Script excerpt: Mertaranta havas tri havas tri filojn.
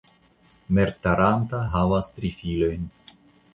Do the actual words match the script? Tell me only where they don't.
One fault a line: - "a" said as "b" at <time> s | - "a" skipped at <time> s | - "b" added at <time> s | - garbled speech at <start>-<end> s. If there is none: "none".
- "havas tri" skipped at 2.3 s